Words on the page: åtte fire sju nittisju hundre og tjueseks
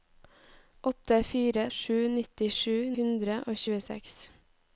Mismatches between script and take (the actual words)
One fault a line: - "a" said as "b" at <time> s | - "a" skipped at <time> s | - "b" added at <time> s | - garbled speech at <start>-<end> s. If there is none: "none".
none